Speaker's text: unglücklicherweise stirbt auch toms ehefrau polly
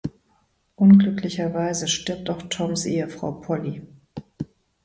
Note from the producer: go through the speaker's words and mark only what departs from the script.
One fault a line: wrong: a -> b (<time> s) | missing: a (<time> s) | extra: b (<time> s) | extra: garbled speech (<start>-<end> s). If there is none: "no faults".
no faults